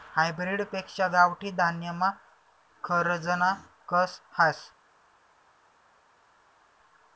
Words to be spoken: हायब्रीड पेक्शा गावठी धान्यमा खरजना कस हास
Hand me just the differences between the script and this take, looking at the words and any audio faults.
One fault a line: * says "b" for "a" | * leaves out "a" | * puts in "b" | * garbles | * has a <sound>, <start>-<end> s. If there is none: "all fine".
all fine